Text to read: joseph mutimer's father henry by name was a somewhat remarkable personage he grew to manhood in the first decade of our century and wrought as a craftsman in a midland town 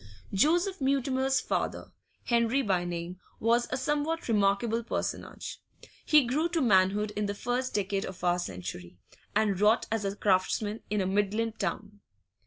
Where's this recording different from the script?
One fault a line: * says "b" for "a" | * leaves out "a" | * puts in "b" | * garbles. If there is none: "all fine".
all fine